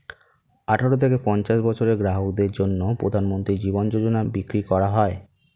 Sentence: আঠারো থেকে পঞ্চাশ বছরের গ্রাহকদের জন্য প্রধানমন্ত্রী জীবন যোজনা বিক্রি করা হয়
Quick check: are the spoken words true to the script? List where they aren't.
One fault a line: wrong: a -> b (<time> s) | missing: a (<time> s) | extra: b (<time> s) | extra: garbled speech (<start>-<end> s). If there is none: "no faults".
no faults